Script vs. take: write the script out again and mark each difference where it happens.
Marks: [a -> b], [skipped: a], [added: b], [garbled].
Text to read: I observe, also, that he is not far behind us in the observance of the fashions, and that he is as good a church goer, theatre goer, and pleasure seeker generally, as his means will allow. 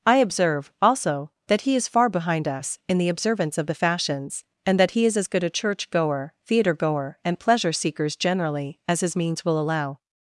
I observe, also, that he is [skipped: not] far behind us in the observance of the fashions, and that he is as good a church goer, theatre goer, and pleasure [seeker -> seekers] generally, as his means will allow.